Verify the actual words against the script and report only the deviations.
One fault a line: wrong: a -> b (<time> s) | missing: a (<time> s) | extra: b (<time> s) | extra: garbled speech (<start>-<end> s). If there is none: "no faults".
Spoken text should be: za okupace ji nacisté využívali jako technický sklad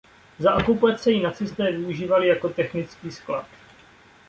no faults